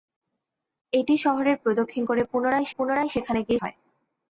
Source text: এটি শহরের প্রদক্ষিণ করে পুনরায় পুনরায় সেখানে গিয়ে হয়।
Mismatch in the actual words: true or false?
false